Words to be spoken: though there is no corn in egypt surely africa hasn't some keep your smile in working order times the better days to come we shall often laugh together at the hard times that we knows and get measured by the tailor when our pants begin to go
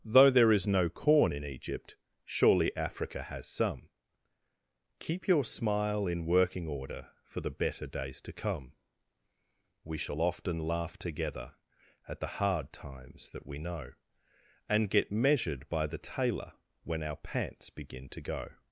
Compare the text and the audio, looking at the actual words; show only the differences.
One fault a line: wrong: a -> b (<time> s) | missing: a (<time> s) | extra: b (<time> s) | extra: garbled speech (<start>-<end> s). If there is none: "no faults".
wrong: hasn't -> has (3.2 s)
wrong: times -> for (7.2 s)
wrong: knows -> know (13.6 s)